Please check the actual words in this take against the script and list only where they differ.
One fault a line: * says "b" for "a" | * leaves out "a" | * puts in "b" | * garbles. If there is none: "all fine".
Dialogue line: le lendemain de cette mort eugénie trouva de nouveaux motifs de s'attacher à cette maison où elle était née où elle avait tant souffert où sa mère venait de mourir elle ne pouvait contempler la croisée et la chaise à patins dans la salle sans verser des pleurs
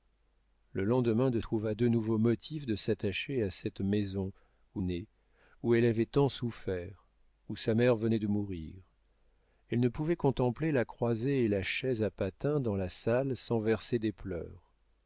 * leaves out "cette mort eugénie"
* leaves out "elle était"